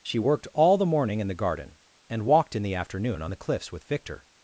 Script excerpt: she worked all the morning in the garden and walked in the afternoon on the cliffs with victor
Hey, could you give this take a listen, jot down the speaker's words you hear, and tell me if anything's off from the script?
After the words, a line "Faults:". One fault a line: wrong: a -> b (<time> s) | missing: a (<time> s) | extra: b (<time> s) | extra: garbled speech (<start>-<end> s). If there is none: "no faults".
she worked all the morning in the garden and walked in the afternoon on the cliffs with victor
Faults:
no faults